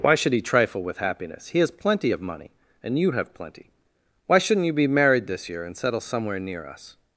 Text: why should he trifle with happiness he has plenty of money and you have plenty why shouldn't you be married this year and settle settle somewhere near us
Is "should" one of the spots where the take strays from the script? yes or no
no